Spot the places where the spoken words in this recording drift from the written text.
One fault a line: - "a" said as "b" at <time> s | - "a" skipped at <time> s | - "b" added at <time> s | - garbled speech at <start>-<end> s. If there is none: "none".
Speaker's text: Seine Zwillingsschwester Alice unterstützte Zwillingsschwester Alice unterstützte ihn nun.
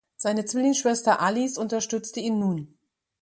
- "Zwillingsschwester Alice unterstützte" skipped at 2.2 s